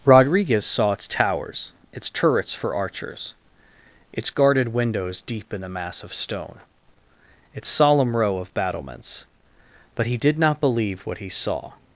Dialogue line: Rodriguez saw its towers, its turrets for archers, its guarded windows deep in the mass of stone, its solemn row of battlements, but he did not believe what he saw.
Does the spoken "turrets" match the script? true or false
true